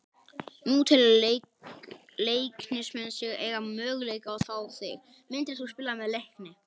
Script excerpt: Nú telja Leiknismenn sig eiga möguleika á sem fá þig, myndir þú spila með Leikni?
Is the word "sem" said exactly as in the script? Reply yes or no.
no